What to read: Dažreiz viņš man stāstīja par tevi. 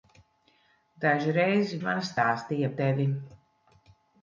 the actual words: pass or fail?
fail